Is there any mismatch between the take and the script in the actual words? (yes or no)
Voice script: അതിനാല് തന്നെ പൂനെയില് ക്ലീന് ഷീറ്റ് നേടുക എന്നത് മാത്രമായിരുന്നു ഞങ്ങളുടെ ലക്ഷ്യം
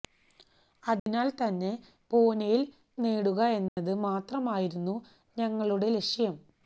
yes